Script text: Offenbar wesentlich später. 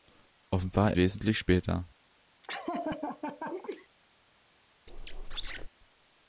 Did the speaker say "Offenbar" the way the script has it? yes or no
yes